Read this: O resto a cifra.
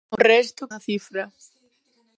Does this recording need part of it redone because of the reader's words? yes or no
no